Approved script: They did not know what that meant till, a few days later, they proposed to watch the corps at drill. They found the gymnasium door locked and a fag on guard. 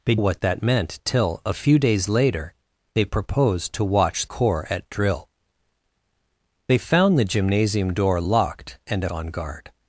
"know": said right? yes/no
no